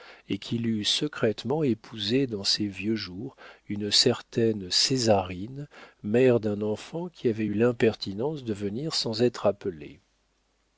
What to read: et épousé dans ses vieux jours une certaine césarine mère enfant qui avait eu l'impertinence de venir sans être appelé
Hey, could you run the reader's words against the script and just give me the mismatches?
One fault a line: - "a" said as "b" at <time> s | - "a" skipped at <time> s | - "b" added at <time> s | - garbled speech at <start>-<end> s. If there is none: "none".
- "qu'il eût secrètement" added at 0.4 s
- "d'un" added at 6.4 s